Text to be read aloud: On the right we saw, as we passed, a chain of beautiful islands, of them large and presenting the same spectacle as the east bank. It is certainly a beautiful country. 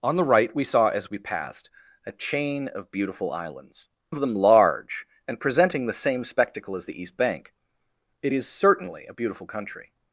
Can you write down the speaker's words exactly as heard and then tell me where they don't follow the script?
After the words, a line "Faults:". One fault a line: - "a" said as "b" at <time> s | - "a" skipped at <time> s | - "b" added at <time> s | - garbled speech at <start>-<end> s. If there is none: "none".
On the right we saw, as we passed, a chain of beautiful islands, of them large and presenting the same spectacle as the east bank. It is certainly a beautiful country.
Faults:
none